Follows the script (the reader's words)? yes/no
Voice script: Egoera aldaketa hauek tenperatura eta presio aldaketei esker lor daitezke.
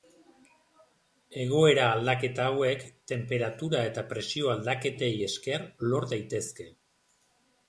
yes